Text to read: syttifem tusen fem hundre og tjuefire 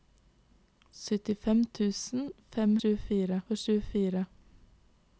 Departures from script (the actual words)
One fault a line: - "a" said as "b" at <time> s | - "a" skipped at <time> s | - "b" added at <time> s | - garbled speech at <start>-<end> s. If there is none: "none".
- "hundre" said as "tjuefire" at 2.8 s